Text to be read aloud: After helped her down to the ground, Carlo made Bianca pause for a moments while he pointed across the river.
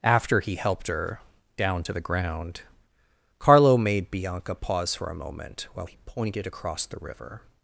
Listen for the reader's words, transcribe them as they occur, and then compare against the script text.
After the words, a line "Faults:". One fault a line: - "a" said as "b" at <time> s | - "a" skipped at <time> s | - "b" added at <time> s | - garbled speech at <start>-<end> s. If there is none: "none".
After he helped her down to the ground, Carlo made Bianca pause for a moment while he pointed across the river.
Faults:
- "he" added at 0.4 s
- "moments" said as "moment" at 5.1 s